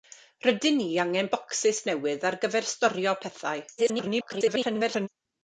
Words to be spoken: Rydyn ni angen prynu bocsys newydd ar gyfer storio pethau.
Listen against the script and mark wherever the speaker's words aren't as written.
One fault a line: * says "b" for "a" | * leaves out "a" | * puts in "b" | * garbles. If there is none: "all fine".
* leaves out "prynu"
* garbles